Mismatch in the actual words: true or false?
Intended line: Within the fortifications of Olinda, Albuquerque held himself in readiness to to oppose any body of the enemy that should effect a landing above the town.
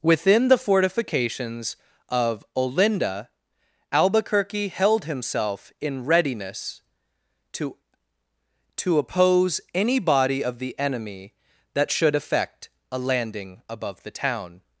false